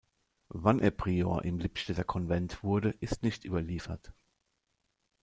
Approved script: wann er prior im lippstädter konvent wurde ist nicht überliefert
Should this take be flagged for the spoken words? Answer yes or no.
no